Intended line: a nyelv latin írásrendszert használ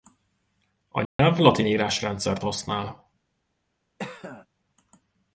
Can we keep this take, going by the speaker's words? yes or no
yes